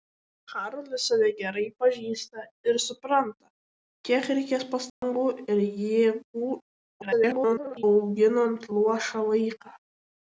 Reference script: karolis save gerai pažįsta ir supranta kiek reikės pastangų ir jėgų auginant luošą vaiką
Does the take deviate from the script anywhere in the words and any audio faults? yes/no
yes